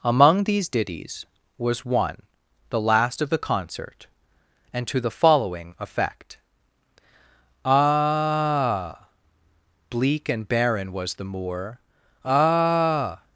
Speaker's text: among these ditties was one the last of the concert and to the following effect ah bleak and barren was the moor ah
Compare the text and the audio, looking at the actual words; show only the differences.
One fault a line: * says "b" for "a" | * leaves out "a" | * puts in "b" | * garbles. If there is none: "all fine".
all fine